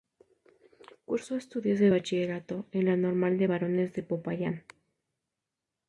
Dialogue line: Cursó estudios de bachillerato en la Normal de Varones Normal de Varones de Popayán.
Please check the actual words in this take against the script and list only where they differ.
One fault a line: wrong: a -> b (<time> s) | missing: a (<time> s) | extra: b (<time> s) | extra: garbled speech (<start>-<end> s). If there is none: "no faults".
missing: Normal de Varones (3.9 s)